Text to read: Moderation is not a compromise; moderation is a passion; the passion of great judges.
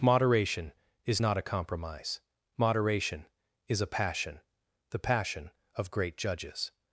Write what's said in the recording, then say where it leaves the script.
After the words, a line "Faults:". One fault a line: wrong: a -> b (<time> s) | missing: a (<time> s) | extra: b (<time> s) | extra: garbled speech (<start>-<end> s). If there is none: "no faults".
Moderation is not a compromise; moderation is a passion; the passion of great judges.
Faults:
no faults